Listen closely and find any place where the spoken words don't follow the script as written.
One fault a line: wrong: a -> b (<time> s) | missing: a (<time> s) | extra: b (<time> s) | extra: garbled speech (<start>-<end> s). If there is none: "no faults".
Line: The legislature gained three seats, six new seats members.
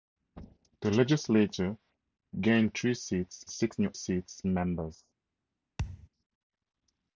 no faults